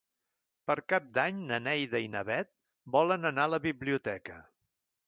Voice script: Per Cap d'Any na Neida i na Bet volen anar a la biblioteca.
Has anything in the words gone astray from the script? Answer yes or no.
no